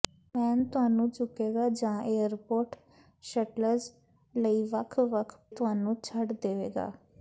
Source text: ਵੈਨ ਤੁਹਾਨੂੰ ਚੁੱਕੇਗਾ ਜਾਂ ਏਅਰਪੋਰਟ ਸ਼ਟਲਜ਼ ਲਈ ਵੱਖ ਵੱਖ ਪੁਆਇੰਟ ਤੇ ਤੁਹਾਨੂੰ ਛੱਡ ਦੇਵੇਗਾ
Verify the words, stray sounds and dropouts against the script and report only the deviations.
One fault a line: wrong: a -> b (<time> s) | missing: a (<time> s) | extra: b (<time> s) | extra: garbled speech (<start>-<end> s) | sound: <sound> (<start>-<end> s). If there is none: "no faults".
missing: ਪੁਆਇੰਟ ਤੇ (5.4 s)